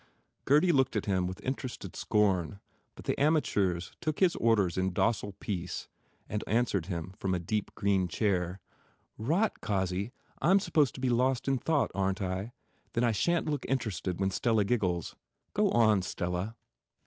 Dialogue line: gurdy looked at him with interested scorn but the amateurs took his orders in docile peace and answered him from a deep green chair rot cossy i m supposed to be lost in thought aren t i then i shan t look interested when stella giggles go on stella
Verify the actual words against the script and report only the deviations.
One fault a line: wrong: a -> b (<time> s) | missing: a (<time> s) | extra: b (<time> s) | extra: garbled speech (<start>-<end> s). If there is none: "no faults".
no faults